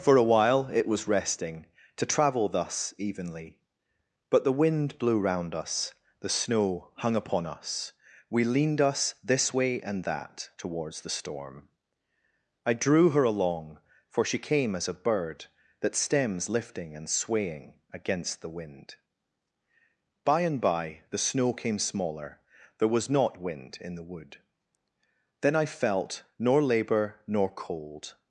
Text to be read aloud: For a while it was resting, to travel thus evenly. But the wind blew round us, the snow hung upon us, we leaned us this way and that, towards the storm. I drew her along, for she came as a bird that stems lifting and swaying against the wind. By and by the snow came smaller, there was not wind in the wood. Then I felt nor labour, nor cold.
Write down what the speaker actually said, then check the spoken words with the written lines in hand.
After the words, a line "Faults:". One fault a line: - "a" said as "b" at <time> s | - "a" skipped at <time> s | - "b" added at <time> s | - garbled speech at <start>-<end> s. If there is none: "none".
For a while it was resting, to travel thus evenly. But the wind blew round us, the snow hung upon us, we leaned us this way and that, towards the storm. I drew her along, for she came as a bird that stems lifting and swaying against the wind. By and by the snow came smaller, there was not wind in the wood. Then I felt nor labour, nor cold.
Faults:
none